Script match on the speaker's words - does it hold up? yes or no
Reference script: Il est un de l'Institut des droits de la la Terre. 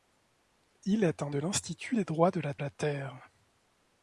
yes